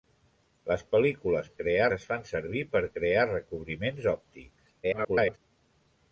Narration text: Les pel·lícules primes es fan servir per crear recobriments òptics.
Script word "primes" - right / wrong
wrong